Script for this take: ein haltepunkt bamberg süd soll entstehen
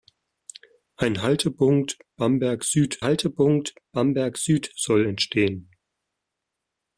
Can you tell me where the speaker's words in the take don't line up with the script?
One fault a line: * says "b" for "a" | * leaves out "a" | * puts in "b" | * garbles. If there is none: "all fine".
* puts in "haltepunkt bamberg süd"